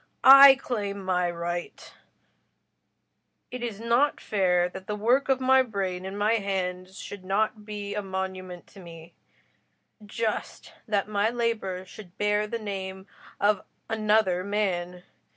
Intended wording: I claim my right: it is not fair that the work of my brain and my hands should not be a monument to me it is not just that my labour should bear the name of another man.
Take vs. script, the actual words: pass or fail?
fail